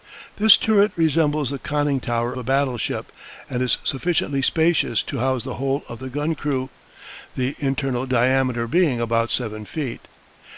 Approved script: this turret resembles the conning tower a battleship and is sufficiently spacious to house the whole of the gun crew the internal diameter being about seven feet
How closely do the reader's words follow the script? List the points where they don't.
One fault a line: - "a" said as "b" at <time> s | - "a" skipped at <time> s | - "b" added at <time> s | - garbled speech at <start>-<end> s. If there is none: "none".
none